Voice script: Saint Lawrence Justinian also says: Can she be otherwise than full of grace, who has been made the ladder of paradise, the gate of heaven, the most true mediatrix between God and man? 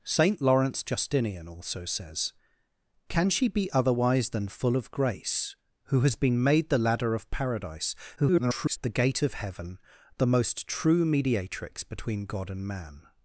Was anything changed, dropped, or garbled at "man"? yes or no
no